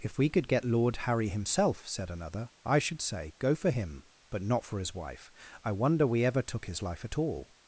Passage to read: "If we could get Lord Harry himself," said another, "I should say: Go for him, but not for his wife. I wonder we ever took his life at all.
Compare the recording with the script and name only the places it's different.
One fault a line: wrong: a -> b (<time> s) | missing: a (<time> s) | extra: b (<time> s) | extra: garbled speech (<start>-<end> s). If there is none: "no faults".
no faults